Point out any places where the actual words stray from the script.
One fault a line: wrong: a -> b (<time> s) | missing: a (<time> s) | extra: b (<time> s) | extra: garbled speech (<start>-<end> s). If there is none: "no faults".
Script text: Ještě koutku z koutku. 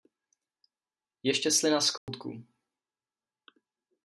wrong: koutku -> slina (1.5 s)